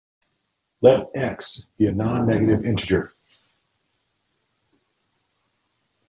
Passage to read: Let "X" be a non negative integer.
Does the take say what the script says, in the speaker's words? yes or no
yes